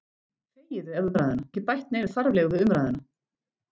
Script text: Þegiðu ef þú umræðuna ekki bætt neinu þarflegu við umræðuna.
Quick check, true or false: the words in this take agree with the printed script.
true